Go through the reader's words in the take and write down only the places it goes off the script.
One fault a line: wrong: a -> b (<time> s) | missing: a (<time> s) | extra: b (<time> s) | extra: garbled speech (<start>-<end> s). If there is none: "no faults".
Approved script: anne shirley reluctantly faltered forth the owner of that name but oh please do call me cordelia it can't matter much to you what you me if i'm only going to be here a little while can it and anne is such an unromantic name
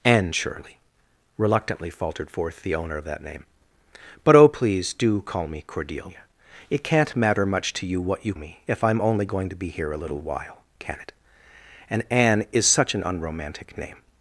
no faults